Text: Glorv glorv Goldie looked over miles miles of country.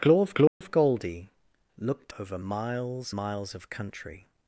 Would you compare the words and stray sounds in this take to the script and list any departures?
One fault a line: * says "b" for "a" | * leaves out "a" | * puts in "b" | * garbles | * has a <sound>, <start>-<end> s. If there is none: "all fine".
* has a dropout, 0.5-0.6 s